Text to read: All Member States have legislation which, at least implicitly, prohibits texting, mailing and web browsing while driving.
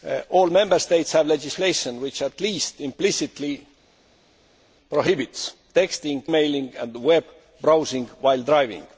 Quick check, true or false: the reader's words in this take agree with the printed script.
true